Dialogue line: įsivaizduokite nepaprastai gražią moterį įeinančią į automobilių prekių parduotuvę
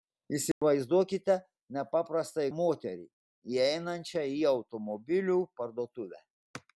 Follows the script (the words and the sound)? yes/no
no